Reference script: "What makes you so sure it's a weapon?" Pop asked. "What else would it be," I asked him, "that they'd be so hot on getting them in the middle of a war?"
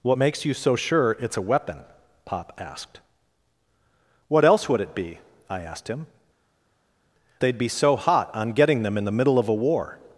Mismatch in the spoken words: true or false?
true